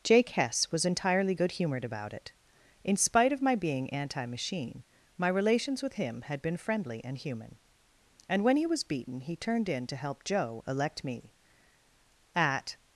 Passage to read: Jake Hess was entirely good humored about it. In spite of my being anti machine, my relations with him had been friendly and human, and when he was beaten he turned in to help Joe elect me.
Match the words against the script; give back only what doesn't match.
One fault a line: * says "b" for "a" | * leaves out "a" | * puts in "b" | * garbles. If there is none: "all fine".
* puts in "At"